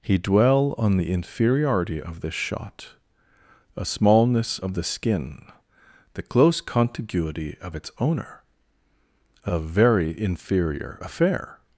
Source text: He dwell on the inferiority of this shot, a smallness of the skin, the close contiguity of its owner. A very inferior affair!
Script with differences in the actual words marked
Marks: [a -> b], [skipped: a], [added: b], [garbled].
He dwell on the inferiority of this shot, a smallness of the skin, the close contiguity of its owner. A very inferior affair!